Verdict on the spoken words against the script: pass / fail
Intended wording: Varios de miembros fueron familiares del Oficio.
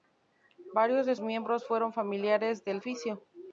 pass